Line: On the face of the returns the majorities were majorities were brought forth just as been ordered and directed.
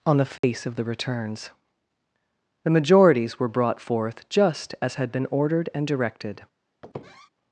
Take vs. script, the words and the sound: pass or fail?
fail